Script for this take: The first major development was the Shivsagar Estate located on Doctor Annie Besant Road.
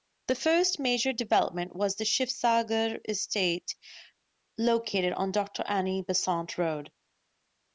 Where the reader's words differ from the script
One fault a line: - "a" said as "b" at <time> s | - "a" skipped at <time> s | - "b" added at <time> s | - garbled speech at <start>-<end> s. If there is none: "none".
none